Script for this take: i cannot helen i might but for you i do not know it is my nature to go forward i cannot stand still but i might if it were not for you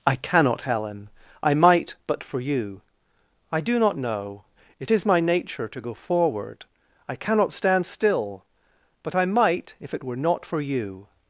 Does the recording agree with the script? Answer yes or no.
yes